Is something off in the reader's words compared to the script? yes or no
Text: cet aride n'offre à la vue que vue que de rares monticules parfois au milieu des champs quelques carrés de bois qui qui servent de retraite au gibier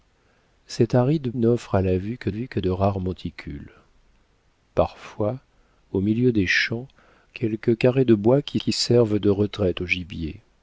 no